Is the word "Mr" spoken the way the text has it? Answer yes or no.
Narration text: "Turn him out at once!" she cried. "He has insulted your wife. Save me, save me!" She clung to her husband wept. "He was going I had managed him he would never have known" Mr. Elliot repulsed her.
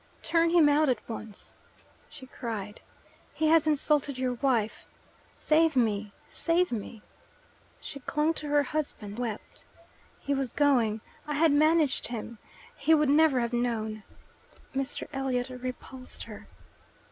yes